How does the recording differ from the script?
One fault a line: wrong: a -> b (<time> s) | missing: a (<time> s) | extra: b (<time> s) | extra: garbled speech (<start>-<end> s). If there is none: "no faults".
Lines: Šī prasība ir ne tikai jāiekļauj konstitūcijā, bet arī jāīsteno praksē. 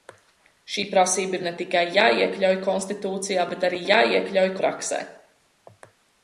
wrong: jāīsteno -> jāiekļauj (3.9 s)